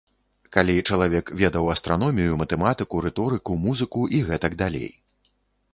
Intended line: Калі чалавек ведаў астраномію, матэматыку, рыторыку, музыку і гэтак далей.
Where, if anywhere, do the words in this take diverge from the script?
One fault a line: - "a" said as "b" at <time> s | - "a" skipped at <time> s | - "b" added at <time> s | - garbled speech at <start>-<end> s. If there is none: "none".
none